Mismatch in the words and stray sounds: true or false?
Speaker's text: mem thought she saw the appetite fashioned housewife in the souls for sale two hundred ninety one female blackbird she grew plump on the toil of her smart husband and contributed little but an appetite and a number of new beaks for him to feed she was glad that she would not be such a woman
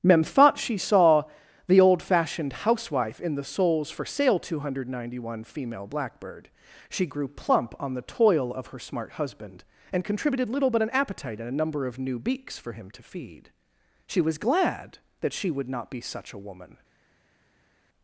true